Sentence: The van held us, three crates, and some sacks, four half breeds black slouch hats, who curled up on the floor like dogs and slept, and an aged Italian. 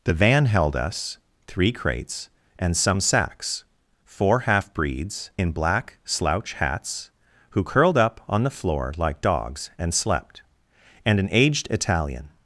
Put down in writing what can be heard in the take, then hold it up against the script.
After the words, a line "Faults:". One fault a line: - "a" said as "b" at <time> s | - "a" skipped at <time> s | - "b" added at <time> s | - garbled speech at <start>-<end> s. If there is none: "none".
The van held us, three crates, and some sacks, four half breeds in black slouch hats, who curled up on the floor like dogs and slept, and an aged Italian.
Faults:
- "in" added at 5.4 s